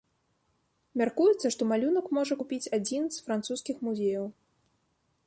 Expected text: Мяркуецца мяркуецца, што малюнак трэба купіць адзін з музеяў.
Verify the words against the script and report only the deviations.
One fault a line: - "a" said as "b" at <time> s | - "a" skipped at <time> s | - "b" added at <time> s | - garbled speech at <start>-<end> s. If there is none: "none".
- "мяркуецца" skipped at 1.5 s
- "трэба" said as "можа" at 2.2 s
- "французскіх" added at 3.3 s